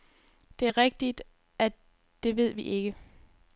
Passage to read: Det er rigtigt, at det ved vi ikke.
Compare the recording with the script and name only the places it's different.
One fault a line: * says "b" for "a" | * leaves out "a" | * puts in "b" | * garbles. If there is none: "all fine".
all fine